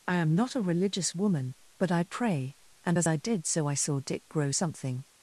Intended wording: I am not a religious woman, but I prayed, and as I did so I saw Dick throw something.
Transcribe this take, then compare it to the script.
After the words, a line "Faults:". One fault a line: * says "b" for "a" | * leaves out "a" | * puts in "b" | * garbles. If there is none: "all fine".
I am not a religious woman, but I pray, and as I did so I saw Dick grow something.
Faults:
* says "pray" for "prayed"
* says "grow" for "throw"